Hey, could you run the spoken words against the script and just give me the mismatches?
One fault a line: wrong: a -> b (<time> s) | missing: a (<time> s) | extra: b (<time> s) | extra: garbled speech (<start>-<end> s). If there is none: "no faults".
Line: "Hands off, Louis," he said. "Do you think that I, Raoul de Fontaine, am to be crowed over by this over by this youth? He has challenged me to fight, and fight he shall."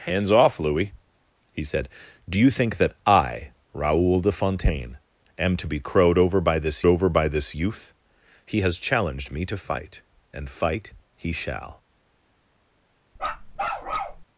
no faults